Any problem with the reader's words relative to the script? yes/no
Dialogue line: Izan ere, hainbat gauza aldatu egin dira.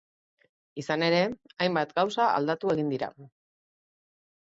no